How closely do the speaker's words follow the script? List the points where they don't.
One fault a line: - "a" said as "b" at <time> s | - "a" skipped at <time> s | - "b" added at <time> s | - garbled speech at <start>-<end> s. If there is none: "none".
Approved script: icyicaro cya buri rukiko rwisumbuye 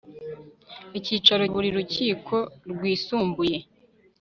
- "cya" skipped at 1.4 s